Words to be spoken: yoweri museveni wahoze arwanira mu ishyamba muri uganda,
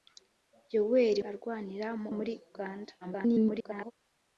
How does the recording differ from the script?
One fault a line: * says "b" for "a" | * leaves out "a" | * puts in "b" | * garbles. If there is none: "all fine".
* leaves out "museveni wahoze"
* leaves out "ishyamba"
* garbles